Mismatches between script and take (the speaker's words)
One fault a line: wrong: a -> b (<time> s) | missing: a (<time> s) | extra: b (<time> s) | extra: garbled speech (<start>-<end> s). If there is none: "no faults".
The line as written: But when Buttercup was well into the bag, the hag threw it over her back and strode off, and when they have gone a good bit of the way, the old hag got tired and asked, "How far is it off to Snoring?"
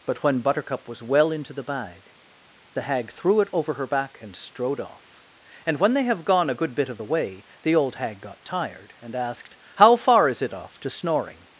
no faults